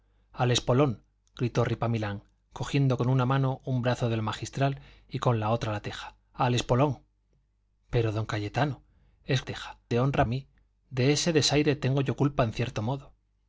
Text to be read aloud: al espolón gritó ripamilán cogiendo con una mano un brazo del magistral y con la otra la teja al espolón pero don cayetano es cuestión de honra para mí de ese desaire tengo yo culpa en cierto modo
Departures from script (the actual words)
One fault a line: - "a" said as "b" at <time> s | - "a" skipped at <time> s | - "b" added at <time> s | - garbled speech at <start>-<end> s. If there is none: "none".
- "cuestión" said as "teja" at 9.5 s
- "para" skipped at 10.3 s